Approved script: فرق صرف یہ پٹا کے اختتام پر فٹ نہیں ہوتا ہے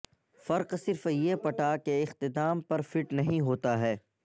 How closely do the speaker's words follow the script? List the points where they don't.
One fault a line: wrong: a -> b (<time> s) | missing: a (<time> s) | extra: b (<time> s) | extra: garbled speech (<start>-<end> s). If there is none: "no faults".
no faults